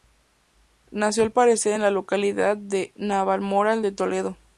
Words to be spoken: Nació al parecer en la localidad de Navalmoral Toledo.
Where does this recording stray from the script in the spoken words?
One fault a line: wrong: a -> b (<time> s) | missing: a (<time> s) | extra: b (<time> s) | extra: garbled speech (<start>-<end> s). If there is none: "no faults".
extra: de (3.8 s)